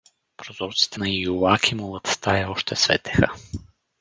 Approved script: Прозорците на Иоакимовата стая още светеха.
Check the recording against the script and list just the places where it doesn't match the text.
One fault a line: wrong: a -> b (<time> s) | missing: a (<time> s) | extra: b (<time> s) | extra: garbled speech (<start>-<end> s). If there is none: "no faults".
no faults